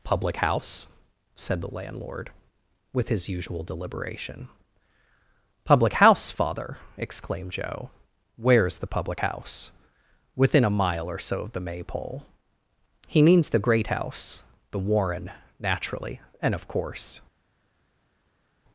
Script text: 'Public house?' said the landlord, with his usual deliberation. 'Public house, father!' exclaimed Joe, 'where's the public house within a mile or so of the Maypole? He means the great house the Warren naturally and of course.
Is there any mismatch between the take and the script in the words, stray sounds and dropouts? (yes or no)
no